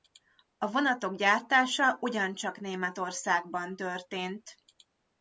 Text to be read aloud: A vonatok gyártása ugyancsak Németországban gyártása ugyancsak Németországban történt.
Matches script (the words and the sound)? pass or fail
fail